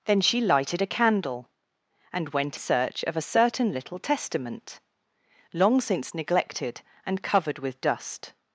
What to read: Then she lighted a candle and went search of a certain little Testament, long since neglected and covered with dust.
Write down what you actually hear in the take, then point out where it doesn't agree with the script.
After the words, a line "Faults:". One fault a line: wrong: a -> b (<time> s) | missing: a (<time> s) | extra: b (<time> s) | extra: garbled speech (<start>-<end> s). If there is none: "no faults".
Then she lighted a candle and went search of a certain little Testament, long since neglected and covered with dust.
Faults:
no faults